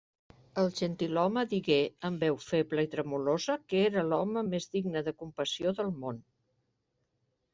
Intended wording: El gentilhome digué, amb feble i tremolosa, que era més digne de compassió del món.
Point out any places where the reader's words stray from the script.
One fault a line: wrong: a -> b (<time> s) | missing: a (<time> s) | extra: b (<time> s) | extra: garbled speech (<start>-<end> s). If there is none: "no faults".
extra: veu (2.3 s)
extra: l'home (4.1 s)